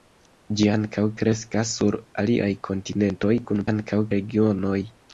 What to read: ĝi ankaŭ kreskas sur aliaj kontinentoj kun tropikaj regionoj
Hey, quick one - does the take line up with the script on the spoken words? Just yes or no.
no